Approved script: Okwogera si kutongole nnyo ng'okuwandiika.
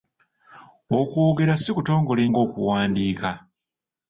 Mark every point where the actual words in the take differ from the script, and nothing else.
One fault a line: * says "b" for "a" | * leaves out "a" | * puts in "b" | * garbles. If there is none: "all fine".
* leaves out "nnyo"